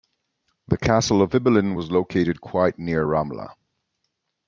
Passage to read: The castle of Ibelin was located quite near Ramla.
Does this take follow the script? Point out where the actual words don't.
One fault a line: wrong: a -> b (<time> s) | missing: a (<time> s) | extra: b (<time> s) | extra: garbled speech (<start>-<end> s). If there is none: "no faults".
no faults